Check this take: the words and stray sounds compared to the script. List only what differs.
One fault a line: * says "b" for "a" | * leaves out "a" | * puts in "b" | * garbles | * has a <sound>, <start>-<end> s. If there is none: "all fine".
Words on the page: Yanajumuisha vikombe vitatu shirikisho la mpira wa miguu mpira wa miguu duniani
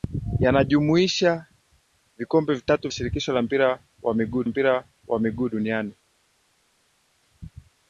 all fine